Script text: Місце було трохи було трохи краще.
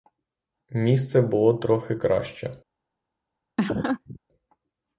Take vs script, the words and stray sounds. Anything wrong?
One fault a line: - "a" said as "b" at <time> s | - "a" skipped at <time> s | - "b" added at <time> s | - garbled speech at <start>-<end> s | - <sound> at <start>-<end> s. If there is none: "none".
- "було трохи" skipped at 1.9 s
- laugh at 3.6-4.2 s